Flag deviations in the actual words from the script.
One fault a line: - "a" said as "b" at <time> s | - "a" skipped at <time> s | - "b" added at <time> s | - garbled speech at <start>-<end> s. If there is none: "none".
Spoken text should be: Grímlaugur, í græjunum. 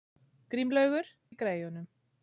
none